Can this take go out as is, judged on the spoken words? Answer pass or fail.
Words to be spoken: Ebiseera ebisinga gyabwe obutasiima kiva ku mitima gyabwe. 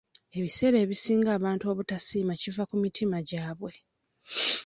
fail